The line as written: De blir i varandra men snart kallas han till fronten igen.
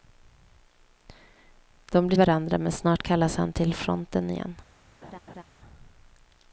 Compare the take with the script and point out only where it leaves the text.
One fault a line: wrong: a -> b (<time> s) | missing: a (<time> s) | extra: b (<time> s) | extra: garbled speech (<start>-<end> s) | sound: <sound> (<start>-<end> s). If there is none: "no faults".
sound: laugh (5.0-5.4 s)